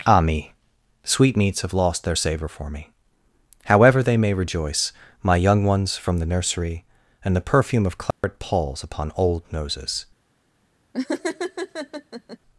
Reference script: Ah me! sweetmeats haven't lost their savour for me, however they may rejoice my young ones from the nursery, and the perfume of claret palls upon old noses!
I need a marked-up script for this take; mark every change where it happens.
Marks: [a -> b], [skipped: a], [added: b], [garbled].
Ah me! sweetmeats [haven't -> have] lost their savour for me, however they may rejoice my young ones from the nursery, and the perfume of claret palls upon old noses!